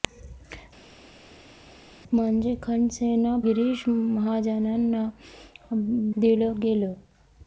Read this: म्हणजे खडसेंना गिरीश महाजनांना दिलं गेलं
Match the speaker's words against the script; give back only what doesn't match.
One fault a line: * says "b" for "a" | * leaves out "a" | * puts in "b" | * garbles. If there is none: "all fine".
all fine